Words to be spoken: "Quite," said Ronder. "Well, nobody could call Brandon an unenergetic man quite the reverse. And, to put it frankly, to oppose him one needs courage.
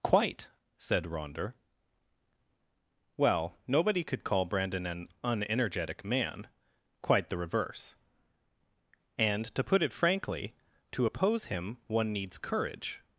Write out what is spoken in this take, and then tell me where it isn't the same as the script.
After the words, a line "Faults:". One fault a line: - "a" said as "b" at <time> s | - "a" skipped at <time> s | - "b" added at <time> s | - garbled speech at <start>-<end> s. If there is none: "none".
"Quite," said Ronder. "Well, nobody could call Brandon an unenergetic man quite the reverse. And, to put it frankly, to oppose him one needs courage.
Faults:
none